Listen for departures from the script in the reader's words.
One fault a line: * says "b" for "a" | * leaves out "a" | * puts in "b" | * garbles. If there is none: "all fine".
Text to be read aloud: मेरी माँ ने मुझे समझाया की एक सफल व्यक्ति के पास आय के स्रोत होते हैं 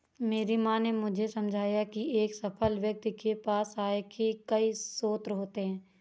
* puts in "कई"